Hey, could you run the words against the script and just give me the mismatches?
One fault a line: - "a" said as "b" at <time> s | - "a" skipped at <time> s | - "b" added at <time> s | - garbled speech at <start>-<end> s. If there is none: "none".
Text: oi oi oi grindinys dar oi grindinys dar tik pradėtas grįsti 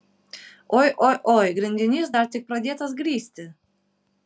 - "oi grindinys dar" skipped at 2.3 s